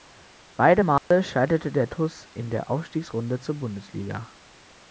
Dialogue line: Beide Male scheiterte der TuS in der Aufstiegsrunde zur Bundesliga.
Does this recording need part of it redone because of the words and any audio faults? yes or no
yes